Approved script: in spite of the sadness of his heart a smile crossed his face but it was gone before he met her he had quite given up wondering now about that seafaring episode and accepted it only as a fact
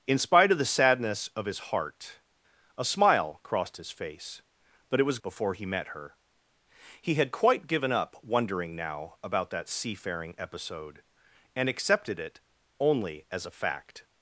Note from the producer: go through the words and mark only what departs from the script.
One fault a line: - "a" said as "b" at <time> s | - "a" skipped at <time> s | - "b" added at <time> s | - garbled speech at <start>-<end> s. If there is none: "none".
- "gone" skipped at 5.2 s